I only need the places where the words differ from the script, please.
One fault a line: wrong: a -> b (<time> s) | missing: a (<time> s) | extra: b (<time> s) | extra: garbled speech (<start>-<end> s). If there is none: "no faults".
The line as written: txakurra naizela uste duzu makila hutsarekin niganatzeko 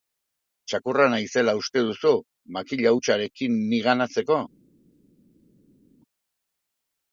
no faults